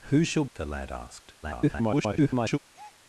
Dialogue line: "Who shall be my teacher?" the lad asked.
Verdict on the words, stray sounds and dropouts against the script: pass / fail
fail